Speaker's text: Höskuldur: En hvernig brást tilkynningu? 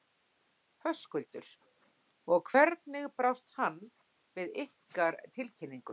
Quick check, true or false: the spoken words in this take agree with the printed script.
false